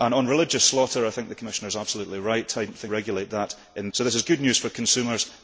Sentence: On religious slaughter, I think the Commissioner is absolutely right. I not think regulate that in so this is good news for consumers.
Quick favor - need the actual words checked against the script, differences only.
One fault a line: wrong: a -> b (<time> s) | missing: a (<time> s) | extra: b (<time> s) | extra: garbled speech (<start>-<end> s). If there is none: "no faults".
no faults